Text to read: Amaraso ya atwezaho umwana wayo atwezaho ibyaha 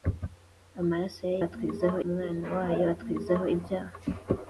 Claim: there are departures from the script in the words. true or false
false